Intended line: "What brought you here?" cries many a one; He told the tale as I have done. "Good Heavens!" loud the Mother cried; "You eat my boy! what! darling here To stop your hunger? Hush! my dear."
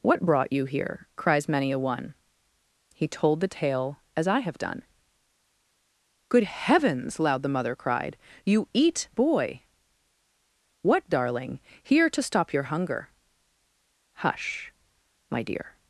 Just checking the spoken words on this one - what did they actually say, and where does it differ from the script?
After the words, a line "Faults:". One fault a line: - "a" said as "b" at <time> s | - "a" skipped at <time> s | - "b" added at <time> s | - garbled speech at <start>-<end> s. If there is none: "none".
"What brought you here?" cries many a one; He told the tale as I have done. "Good Heavens!" loud the Mother cried; "You eat boy! what! darling here To stop your hunger? Hush! my dear."
Faults:
- "my" skipped at 9.1 s